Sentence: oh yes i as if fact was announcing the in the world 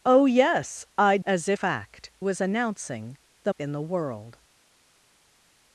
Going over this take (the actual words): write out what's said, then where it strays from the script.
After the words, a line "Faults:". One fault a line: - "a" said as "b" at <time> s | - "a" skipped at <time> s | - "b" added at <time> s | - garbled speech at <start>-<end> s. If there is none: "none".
oh yes i as if fact was announcing the in the world
Faults:
none